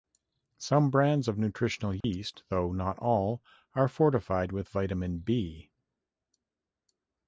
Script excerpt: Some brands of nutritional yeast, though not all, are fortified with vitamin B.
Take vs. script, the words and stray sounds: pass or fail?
fail